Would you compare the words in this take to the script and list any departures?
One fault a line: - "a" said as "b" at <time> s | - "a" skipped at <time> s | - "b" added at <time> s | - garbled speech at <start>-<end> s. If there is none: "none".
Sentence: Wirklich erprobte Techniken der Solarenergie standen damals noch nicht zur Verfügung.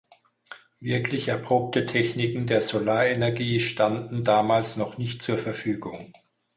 none